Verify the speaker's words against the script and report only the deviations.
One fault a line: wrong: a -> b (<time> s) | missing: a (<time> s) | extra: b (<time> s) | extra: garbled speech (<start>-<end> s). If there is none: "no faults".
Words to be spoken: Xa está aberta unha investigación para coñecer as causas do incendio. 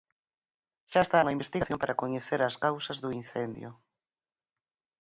missing: aberta (1.2 s)